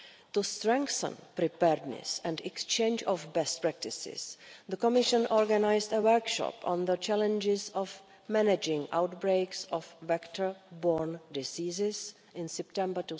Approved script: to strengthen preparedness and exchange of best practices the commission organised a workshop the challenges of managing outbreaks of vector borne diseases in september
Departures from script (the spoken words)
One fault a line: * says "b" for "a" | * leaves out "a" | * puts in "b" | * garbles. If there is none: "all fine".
* puts in "on"